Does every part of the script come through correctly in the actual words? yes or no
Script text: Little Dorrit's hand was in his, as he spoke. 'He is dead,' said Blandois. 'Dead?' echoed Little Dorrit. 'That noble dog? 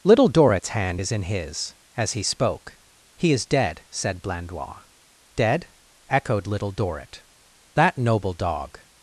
no